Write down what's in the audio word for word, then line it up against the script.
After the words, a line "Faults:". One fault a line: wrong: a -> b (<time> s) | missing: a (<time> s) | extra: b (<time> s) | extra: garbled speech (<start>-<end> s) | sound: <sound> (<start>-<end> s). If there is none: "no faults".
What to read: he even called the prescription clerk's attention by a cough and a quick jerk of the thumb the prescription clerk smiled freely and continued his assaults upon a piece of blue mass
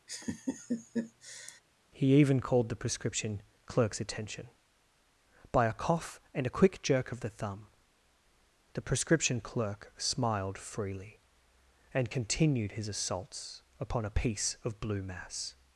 he even called the prescription clerk's attention by a cough and a quick jerk of the thumb the prescription clerk smiled freely and continued his assaults upon a piece of blue mass
Faults:
sound: laugh (0.1-1.6 s)